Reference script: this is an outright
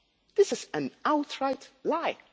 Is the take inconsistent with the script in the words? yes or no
no